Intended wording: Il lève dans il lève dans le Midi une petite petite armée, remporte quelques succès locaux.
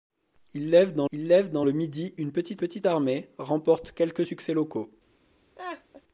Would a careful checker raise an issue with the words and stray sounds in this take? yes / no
yes